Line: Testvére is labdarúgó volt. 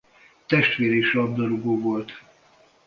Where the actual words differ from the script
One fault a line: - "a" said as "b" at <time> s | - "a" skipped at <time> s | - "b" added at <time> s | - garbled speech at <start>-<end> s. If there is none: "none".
none